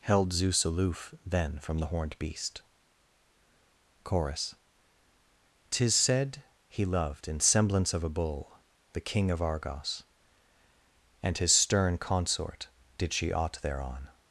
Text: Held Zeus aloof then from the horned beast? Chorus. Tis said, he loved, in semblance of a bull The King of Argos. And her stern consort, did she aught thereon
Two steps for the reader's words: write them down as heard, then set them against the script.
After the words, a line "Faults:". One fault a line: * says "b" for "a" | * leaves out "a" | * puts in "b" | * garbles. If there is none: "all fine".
Held Zeus aloof then from the horned beast? Chorus. Tis said, he loved, in semblance of a bull The King of Argos. And his stern consort, did she aught thereon
Faults:
* says "his" for "her"